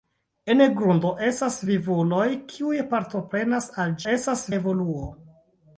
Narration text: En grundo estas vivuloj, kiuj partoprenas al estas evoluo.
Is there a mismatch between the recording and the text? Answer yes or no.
no